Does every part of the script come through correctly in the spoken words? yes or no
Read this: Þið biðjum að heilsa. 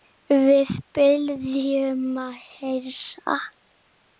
no